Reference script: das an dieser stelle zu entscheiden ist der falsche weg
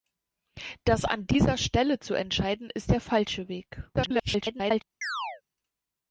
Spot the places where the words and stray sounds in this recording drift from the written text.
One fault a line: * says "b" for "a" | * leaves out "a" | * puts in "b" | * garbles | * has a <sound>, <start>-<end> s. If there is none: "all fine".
* garbles
* has a chirp, 5.0-5.4 s